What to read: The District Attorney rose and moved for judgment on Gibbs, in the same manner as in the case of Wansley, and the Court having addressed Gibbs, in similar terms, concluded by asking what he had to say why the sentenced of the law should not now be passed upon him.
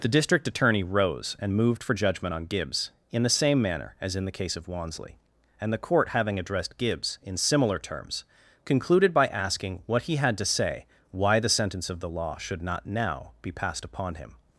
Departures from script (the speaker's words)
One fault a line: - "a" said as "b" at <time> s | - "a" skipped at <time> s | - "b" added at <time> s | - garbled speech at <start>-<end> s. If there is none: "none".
- "sentenced" said as "sentence" at 11.5 s